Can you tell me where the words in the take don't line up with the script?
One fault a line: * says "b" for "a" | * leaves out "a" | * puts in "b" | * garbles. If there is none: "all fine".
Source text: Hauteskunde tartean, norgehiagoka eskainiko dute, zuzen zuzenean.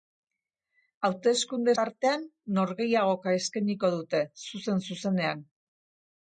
all fine